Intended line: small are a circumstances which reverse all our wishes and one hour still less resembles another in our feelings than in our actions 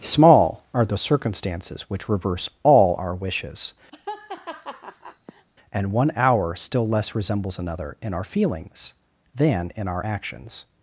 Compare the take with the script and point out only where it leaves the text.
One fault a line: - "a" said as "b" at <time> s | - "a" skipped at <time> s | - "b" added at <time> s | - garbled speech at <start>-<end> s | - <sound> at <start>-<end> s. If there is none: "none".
- "a" said as "the" at 0.8 s
- laugh at 3.9-5.5 s